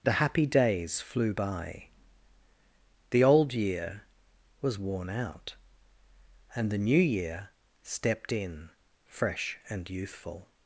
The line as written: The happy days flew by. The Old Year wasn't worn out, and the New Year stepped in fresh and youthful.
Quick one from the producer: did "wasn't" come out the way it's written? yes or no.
no